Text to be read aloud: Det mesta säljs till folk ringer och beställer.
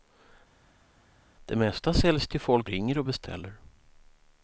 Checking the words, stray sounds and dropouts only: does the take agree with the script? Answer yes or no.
yes